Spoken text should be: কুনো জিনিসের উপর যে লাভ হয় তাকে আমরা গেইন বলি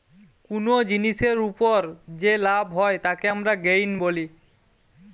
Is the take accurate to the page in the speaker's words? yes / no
yes